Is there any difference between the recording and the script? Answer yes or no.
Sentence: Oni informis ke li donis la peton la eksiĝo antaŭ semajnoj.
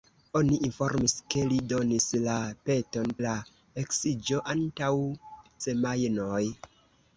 no